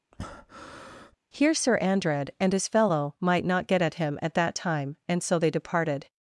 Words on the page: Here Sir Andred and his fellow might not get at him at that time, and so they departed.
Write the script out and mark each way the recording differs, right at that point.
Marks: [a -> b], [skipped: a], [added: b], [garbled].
Here Sir Andred and his fellow might not get at him at that time, and so they departed.